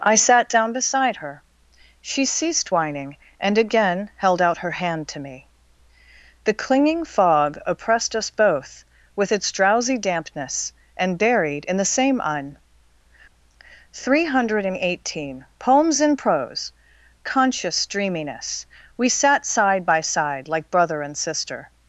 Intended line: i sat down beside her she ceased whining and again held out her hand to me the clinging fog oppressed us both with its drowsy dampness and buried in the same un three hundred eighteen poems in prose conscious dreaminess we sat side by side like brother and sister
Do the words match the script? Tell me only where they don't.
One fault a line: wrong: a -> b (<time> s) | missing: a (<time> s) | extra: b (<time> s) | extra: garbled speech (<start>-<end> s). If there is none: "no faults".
no faults